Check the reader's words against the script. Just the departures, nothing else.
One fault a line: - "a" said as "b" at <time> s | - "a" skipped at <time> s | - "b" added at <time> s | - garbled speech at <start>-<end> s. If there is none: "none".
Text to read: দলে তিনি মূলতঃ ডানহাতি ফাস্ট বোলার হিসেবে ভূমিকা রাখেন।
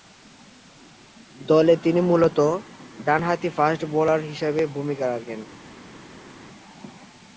none